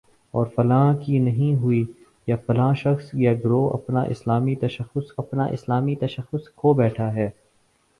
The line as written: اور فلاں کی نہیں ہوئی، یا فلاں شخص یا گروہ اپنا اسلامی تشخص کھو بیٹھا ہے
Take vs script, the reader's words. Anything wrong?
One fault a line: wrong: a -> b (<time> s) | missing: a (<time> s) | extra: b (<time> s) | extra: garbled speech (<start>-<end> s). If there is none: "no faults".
extra: اپنا اسلامی تشخص (5.2 s)